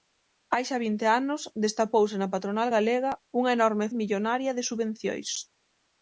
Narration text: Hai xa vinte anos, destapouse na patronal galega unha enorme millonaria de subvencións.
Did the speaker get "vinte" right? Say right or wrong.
right